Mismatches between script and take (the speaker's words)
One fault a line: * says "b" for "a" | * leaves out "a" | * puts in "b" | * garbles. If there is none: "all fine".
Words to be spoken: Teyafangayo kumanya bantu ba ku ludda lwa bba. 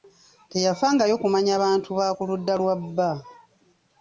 all fine